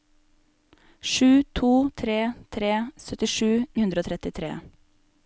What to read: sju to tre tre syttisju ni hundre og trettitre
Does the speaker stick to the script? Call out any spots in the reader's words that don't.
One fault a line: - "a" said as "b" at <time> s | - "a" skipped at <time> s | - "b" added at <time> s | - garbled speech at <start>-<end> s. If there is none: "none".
- "ni" skipped at 3.5 s